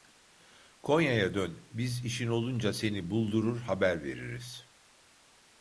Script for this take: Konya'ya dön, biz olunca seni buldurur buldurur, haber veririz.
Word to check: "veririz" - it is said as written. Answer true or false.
true